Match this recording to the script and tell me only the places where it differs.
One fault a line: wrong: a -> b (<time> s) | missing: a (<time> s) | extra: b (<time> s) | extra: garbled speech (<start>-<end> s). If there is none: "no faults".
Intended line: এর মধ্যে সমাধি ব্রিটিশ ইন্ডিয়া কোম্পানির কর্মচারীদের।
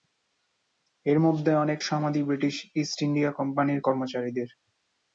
extra: অনেক (1.6 s)
extra: ইস্ট (2.8 s)